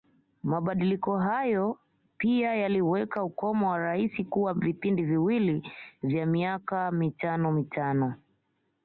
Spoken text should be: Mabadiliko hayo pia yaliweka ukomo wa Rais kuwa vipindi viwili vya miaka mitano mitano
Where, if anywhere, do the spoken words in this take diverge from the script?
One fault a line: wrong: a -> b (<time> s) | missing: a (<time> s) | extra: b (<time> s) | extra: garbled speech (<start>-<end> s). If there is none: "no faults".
no faults